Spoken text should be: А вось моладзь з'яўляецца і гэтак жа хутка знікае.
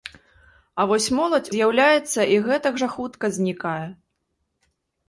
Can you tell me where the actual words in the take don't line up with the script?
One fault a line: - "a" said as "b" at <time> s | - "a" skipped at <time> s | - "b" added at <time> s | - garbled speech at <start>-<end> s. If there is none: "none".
none